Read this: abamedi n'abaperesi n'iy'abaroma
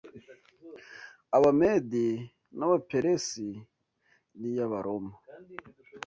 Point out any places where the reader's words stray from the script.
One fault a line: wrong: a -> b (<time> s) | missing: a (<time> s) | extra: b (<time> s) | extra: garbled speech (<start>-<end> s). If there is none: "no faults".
no faults